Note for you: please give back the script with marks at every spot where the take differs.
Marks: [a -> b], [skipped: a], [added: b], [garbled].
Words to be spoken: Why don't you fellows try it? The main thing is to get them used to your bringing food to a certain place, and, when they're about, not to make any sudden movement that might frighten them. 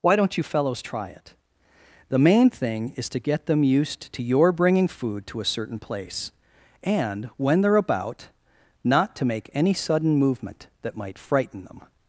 Why don't you fellows try it? The main thing is to get them used to your bringing food to a certain place, and, when they're about, not to make any sudden movement that might frighten them.